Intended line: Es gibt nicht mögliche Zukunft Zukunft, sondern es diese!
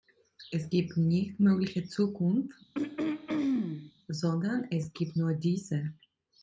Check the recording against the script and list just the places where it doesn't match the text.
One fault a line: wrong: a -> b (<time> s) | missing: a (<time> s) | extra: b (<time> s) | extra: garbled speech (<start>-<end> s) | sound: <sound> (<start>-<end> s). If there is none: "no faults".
missing: Zukunft (2.6 s)
sound: throat clearing (2.7-3.9 s)
extra: gibt nur (4.9 s)